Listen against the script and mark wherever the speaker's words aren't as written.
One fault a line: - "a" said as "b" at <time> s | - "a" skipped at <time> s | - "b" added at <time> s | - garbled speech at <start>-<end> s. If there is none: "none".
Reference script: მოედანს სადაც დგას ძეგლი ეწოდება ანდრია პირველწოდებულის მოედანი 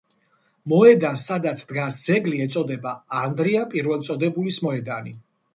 none